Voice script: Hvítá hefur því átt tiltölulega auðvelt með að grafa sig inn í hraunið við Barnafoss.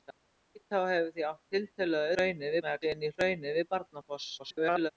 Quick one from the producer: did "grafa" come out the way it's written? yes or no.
no